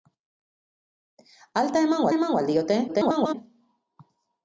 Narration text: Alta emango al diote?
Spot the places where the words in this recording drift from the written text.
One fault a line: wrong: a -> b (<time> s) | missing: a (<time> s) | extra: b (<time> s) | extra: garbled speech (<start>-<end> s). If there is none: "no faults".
extra: emango (2.1 s)
extra: garbled speech (2.9-3.3 s)